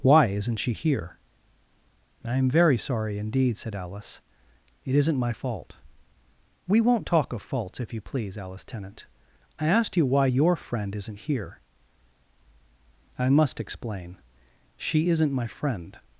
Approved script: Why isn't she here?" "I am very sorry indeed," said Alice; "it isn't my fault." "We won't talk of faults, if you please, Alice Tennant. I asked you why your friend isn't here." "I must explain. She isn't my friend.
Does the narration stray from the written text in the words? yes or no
no